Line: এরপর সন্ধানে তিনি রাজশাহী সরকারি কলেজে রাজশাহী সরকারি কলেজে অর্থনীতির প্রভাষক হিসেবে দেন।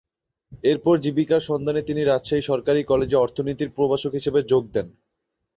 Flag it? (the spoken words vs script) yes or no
yes